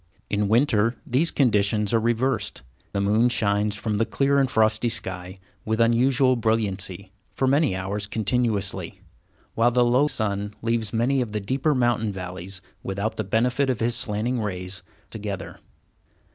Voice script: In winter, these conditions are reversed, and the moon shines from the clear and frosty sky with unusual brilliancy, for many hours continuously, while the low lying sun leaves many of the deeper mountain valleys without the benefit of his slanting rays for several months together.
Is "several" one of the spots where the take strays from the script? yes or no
yes